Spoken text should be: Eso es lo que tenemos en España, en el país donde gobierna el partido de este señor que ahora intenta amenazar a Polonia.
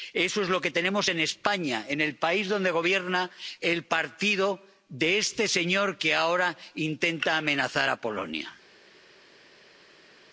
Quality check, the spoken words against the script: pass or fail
pass